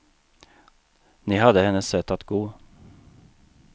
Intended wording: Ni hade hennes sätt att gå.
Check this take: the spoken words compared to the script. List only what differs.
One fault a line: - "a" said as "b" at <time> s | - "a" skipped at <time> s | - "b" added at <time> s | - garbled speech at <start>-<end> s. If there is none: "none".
none